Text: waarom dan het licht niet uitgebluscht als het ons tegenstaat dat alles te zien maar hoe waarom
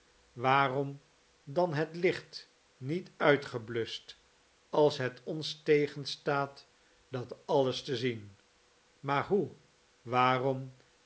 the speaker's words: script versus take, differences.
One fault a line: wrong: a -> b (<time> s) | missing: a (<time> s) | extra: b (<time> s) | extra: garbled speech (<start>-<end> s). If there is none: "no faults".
no faults